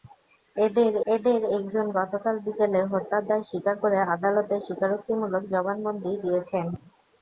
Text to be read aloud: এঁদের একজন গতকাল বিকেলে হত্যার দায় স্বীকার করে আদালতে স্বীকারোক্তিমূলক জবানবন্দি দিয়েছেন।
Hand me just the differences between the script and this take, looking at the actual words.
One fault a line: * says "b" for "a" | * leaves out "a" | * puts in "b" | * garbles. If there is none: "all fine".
* puts in "এঁদের"